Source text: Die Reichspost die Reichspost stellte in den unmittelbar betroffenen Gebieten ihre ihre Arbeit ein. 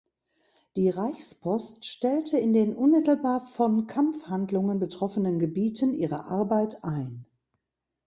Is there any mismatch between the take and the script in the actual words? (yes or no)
yes